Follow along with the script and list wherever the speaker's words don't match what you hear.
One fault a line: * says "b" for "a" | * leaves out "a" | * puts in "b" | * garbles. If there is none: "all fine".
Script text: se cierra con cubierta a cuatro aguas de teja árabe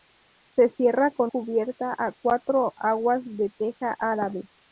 all fine